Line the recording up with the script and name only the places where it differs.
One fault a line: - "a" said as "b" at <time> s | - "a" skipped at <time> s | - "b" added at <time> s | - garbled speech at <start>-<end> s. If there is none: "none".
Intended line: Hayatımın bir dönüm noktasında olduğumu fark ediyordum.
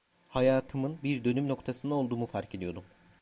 none